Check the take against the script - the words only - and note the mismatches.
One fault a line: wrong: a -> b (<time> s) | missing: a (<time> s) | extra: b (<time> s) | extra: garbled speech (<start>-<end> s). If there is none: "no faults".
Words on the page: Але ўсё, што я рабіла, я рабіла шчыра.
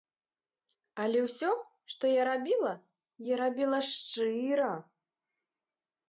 no faults